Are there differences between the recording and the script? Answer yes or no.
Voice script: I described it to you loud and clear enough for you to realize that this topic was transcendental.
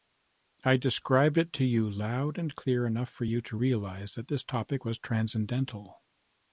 no